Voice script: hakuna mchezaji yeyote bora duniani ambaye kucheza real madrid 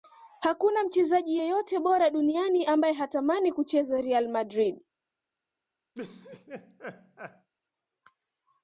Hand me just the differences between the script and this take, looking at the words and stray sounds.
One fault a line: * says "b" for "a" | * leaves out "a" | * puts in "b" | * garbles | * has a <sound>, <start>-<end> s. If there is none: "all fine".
* puts in "hatamani"
* has a laugh, 5.9-7.5 s